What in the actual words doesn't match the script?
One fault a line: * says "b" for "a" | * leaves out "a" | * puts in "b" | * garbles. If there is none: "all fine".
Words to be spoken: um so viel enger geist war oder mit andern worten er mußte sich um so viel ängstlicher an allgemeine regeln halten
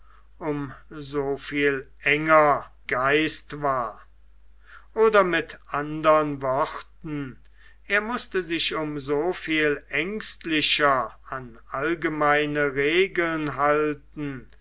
all fine